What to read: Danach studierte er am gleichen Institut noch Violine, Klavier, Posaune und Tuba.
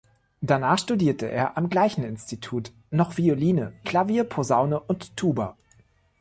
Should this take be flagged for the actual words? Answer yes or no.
no